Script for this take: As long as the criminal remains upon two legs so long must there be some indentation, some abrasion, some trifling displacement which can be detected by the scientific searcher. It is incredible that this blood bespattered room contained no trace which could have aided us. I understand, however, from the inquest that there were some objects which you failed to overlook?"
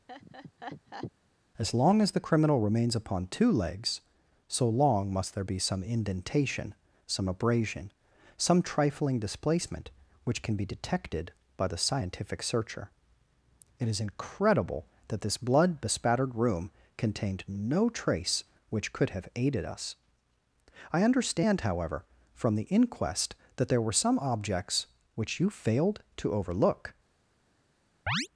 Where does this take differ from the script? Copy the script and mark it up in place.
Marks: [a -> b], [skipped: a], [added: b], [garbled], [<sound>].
[laugh] As long as the criminal remains upon two legs so long must there be some indentation, some abrasion, some trifling displacement which can be detected by the scientific searcher. It is incredible that this blood bespattered room contained no trace which could have aided us. I understand, however, from the inquest that there were some objects which you failed to overlook?" [chirp]